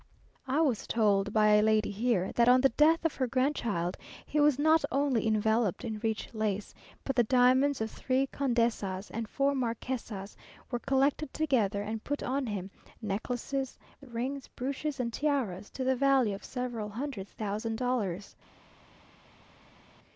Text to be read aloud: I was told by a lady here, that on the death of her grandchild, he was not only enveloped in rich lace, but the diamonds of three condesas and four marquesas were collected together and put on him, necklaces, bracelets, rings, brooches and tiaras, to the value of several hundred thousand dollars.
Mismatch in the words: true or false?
true